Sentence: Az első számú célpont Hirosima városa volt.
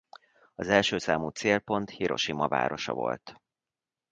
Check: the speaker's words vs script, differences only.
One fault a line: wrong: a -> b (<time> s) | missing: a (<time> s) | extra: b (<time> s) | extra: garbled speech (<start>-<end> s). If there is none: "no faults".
no faults